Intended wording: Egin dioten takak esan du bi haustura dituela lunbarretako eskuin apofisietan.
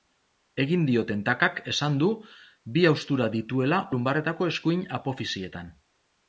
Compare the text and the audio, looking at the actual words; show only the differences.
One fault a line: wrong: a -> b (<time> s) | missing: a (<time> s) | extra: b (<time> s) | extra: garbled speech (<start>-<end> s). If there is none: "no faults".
no faults